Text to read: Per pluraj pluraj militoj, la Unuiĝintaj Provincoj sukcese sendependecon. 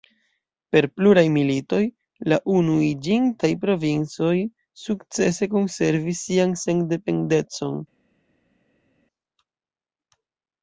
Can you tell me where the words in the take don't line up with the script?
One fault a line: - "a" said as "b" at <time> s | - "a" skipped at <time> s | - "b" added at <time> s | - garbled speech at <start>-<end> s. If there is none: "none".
- "pluraj" skipped at 1.2 s
- "konservis sian" added at 5.6 s